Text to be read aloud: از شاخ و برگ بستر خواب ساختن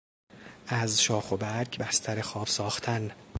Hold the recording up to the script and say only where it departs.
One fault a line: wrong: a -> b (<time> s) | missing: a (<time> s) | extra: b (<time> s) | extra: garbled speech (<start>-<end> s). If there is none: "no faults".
no faults